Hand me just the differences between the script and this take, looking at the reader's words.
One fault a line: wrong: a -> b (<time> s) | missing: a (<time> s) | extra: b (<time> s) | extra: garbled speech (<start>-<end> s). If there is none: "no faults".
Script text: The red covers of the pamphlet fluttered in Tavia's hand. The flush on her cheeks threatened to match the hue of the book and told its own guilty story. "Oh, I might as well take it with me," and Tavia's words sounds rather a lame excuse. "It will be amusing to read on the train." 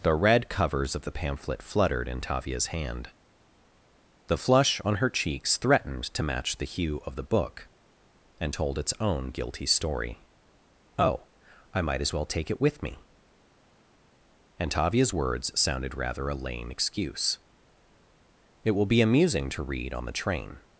wrong: sounds -> sounded (15.6 s)